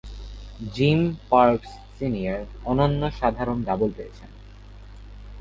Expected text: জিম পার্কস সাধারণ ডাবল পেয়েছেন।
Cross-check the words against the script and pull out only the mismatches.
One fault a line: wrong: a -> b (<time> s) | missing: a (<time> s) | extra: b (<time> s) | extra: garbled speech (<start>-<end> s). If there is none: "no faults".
extra: সিনিয়র অনন্য (1.9 s)